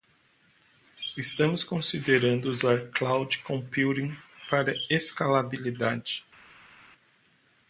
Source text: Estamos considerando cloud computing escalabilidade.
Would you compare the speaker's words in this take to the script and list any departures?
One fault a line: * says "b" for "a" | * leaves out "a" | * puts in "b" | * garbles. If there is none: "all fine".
* puts in "usar"
* puts in "para"